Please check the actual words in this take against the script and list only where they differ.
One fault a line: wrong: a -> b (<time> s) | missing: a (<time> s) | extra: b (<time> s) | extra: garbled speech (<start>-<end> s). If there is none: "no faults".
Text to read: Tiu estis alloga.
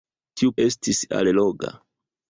no faults